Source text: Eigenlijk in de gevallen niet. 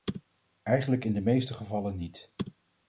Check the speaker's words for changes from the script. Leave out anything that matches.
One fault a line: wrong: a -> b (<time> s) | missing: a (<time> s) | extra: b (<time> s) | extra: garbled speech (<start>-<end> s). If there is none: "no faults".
extra: meeste (1.2 s)